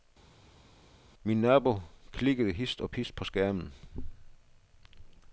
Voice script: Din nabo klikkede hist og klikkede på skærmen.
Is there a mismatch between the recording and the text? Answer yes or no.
yes